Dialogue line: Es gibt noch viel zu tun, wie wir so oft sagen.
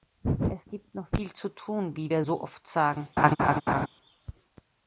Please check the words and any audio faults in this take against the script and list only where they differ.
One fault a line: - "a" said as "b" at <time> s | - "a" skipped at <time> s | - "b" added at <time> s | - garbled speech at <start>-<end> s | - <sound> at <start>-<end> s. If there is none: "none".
- laugh at 3.2-3.9 s